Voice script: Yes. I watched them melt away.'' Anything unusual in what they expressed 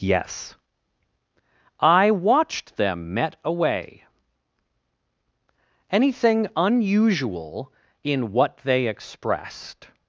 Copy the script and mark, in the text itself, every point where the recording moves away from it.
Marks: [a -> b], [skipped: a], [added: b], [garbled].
Yes. I watched them [melt -> met] away.'' Anything unusual in what they expressed